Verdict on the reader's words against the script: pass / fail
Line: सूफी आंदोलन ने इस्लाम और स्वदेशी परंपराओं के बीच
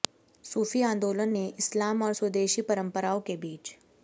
pass